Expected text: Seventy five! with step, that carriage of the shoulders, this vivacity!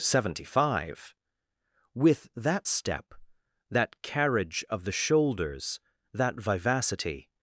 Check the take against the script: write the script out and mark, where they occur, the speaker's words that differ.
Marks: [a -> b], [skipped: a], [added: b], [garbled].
Seventy five! with [added: that] step, that carriage of the shoulders, [this -> that] vivacity!